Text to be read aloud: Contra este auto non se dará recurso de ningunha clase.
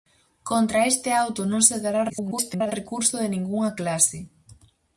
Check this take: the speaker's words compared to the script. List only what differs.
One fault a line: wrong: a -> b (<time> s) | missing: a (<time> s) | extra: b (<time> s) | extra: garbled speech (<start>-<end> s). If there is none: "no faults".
extra: garbled speech (2.1-2.7 s)